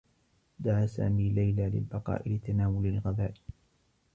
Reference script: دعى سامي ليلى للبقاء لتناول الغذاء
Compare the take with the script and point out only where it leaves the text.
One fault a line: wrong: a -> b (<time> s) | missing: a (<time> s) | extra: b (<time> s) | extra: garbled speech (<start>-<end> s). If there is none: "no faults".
no faults